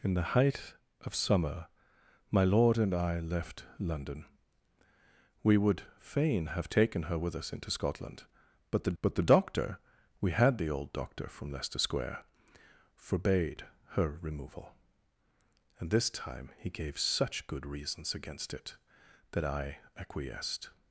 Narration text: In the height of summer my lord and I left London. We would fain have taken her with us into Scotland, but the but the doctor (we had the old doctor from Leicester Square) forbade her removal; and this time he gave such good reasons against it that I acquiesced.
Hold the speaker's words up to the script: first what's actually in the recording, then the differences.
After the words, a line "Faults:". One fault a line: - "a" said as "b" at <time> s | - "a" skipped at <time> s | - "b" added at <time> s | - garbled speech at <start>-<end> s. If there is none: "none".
In the height of summer my lord and I left London. We would fain have taken her with us into Scotland, but the but the doctor (we had the old doctor from Leicester Square) forbade her removal; and this time he gave such good reasons against it that I acquiesced.
Faults:
none